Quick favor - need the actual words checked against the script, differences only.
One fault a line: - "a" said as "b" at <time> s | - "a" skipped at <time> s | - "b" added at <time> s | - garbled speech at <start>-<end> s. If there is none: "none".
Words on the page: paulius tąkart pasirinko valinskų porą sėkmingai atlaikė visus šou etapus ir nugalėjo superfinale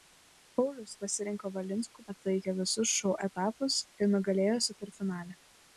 - "tąkart" skipped at 0.9 s
- "porą sėkmingai" skipped at 2.1 s